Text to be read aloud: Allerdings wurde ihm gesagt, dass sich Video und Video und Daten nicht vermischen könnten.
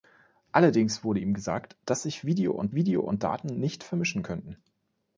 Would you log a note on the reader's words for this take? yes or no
no